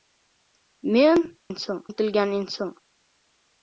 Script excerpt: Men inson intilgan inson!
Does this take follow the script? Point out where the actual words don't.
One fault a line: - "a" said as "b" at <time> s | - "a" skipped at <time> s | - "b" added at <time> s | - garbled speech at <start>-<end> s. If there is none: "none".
none